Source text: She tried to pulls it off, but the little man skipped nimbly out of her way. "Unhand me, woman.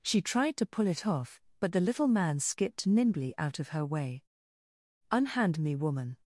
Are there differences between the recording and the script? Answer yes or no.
yes